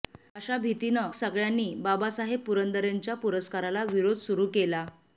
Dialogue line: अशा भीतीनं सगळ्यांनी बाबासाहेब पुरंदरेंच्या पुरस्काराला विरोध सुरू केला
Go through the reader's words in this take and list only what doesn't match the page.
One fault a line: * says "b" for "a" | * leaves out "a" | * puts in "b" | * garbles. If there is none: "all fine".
all fine